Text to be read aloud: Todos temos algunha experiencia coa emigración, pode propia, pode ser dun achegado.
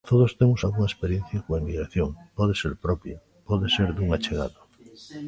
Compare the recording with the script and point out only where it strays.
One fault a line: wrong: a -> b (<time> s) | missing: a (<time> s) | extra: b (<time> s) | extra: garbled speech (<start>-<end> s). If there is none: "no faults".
extra: ser (2.6 s)